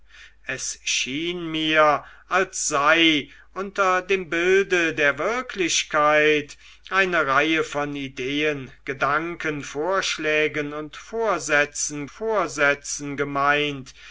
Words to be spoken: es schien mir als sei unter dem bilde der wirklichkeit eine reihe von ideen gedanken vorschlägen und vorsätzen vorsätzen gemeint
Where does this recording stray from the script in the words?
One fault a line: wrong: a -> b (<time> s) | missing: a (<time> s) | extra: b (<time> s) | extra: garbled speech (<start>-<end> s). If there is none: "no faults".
no faults